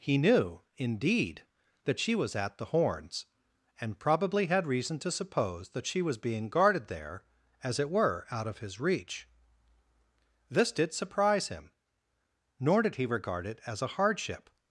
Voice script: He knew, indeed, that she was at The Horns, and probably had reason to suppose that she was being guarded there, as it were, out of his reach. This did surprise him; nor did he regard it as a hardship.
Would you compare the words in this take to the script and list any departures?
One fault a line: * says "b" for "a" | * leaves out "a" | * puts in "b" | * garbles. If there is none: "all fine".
all fine